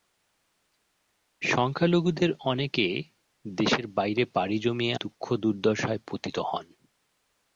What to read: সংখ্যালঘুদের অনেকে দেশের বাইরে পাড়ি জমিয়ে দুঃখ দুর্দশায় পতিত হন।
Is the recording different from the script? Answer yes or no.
no